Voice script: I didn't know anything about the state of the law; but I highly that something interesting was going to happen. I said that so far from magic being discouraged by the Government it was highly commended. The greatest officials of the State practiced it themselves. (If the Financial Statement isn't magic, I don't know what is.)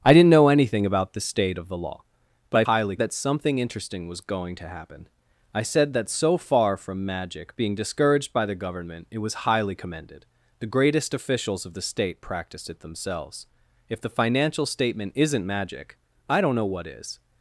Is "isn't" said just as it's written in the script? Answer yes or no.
yes